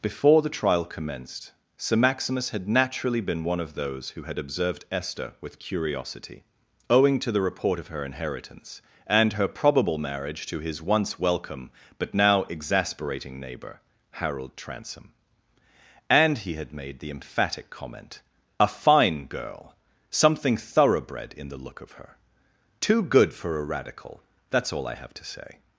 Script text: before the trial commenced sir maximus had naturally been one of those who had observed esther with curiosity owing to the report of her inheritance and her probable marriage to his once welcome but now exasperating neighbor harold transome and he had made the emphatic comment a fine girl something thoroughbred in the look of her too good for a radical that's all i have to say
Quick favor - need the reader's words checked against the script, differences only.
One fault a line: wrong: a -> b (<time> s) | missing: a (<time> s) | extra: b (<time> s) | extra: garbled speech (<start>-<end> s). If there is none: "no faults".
no faults